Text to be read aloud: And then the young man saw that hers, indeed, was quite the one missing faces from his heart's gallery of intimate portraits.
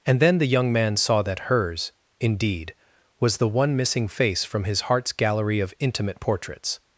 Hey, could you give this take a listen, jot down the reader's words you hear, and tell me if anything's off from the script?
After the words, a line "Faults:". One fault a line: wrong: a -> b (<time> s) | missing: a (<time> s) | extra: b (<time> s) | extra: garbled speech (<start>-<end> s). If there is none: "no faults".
And then the young man saw that hers, indeed, was the one missing face from his heart's gallery of intimate portraits.
Faults:
missing: quite (3.4 s)
wrong: faces -> face (4.1 s)